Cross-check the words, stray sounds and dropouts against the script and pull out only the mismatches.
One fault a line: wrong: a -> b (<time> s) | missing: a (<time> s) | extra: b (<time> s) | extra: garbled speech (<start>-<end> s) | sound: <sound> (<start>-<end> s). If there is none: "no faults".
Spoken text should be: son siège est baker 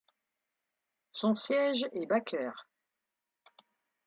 no faults